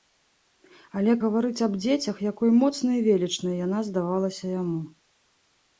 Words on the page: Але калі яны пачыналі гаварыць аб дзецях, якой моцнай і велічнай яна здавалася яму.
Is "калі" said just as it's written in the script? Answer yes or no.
no